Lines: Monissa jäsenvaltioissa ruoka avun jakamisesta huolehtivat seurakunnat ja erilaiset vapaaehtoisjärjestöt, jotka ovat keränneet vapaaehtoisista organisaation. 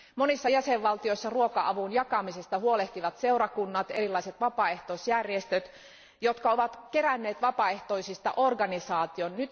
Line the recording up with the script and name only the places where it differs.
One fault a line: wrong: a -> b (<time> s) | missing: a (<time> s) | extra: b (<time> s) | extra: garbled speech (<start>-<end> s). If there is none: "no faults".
no faults